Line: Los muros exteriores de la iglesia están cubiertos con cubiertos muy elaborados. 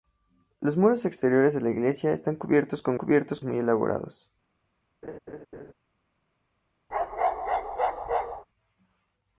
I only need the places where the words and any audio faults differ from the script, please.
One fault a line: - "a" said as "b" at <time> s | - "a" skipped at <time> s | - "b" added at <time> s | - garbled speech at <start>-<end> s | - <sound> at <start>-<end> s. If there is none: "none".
- laugh at 5.0-5.7 s
- bark at 6.9-8.5 s